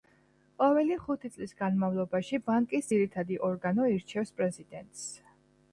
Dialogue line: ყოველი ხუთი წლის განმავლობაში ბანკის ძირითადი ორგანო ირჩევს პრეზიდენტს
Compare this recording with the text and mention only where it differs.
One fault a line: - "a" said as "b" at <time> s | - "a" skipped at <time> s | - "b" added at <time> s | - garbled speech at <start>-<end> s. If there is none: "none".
none